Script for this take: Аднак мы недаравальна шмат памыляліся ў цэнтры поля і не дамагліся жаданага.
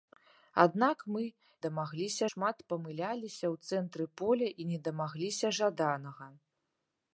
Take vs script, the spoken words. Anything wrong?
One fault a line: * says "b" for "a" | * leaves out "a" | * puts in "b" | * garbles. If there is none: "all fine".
* says "дамагліся" for "недаравальна"